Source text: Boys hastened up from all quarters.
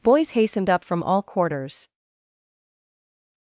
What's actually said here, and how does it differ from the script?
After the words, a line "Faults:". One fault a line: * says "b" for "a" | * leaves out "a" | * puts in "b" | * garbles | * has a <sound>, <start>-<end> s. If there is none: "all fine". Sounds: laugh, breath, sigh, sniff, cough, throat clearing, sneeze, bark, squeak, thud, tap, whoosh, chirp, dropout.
Boys hastened up from all quarters.
Faults:
all fine